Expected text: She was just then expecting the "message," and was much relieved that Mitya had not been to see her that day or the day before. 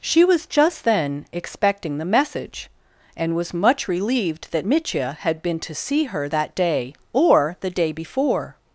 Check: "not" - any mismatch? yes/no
yes